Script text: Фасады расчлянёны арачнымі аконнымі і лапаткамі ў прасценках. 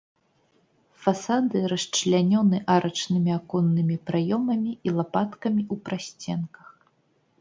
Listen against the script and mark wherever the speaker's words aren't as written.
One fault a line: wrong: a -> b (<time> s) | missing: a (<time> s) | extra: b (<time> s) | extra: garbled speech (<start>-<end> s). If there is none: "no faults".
extra: праёмамі (4.1 s)